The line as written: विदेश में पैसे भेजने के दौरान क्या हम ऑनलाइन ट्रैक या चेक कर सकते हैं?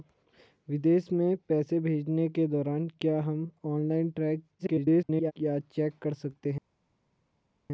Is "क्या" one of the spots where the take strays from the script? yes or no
no